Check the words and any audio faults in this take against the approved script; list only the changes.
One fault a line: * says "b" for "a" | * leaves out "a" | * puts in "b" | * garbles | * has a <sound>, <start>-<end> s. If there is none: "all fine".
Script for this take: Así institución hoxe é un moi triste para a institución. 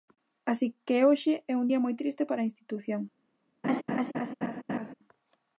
* says "que" for "institución"
* puts in "día"
* has a laugh, 3.6-4.9 s